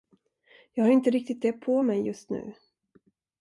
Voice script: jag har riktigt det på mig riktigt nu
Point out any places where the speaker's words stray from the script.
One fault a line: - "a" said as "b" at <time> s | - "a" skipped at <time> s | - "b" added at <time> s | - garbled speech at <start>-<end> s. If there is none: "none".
- "inte" added at 0.9 s
- "riktigt" said as "just" at 2.1 s